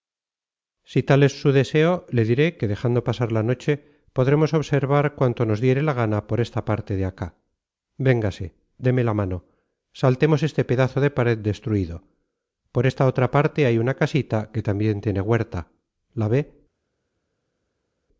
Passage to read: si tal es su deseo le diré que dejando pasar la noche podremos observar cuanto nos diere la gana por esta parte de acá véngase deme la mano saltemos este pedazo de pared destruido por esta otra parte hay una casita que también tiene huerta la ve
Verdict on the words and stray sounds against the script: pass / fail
pass